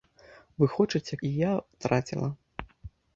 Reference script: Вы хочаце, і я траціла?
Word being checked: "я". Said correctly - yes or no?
yes